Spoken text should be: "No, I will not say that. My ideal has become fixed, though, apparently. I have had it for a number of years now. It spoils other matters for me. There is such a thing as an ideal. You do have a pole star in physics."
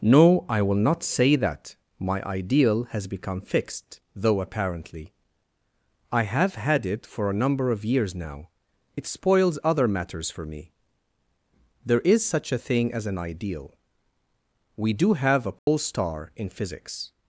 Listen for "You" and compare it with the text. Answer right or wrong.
wrong